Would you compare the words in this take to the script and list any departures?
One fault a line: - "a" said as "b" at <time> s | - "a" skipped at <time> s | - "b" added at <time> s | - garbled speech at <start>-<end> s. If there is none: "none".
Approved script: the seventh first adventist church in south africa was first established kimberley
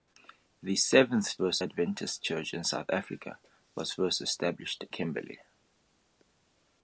none